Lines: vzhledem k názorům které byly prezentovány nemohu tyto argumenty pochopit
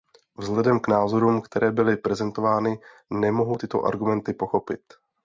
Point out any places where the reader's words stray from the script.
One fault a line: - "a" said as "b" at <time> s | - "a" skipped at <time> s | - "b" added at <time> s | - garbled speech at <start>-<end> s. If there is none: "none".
none